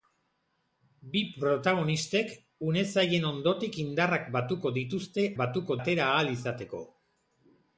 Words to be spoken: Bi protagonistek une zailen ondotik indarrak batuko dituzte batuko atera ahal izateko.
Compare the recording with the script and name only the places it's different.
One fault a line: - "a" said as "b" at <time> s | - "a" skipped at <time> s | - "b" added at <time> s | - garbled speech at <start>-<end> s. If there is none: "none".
none